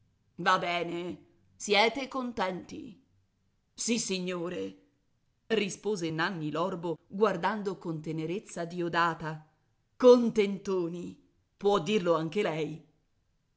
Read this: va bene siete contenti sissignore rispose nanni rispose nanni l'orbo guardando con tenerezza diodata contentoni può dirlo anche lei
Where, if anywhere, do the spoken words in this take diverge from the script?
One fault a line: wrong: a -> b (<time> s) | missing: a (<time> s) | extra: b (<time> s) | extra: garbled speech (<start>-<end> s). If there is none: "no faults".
missing: rispose nanni (6.5 s)